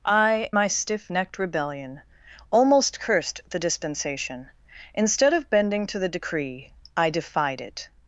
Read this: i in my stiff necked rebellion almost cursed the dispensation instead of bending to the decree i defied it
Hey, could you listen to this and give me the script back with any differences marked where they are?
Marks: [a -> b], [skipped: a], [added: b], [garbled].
i [skipped: in] my stiff necked rebellion almost cursed the dispensation instead of bending to the decree i defied it